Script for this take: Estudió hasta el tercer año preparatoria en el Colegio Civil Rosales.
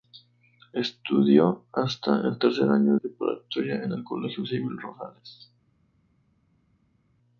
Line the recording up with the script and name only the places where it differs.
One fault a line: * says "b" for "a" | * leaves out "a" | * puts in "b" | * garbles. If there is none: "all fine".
all fine